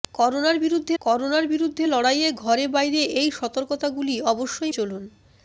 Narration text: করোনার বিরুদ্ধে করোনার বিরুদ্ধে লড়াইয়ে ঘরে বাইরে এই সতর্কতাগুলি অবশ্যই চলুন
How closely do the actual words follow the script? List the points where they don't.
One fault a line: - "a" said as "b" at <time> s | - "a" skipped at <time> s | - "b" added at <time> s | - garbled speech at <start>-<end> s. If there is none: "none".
none